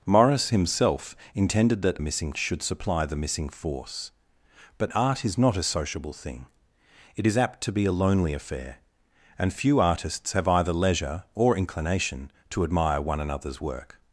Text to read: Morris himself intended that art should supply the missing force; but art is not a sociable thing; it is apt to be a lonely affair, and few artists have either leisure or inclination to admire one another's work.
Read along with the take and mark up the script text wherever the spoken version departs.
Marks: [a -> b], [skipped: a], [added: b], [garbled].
Morris himself intended that [art -> missing] should supply the missing force; but art is not a sociable thing; it is apt to be a lonely affair, and few artists have either leisure or inclination to admire one another's work.